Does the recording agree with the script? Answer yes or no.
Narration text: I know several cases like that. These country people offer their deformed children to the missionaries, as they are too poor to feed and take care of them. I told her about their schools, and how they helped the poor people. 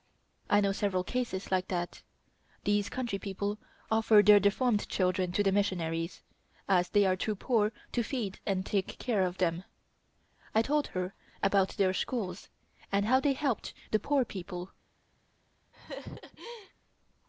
yes